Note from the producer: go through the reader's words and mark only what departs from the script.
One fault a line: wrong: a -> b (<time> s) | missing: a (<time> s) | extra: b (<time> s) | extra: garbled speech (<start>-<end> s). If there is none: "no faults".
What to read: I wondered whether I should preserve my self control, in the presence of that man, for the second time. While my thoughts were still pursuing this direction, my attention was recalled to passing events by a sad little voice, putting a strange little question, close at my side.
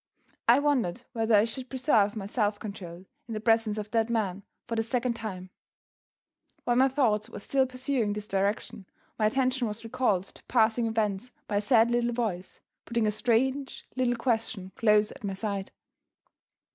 no faults